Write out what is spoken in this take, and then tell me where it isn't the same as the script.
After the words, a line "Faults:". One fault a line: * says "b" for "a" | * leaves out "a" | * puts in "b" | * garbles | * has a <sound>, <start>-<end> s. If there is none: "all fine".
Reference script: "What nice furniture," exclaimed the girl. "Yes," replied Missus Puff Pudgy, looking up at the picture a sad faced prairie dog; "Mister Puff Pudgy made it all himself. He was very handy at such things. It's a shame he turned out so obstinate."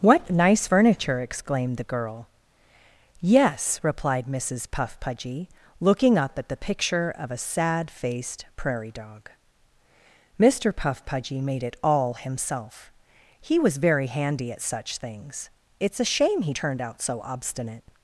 "What nice furniture," exclaimed the girl. "Yes," replied Missus Puff Pudgy, looking up at the picture of a sad faced prairie dog; "Mister Puff Pudgy made it all himself. He was very handy at such things. It's a shame he turned out so obstinate."
Faults:
* puts in "of"